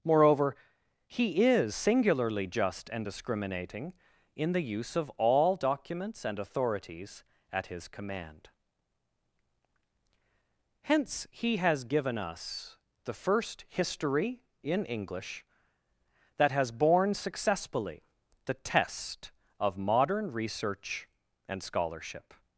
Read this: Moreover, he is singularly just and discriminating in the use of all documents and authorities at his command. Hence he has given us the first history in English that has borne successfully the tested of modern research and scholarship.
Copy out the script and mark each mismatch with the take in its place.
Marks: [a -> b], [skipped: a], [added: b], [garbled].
Moreover, he is singularly just and discriminating in the use of all documents and authorities at his command. Hence he has given us the first history in English that has borne successfully the [tested -> test] of modern research and scholarship.